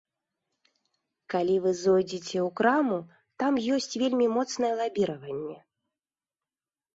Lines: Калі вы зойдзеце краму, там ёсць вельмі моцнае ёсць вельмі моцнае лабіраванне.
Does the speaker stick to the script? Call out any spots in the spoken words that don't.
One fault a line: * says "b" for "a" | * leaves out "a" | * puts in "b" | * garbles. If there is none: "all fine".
* puts in "ў"
* leaves out "ёсць вельмі моцнае"